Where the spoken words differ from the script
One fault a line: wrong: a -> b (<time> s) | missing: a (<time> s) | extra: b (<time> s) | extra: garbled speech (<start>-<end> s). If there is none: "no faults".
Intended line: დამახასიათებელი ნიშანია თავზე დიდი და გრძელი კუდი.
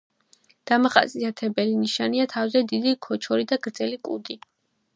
extra: ქოჩორი (3.1 s)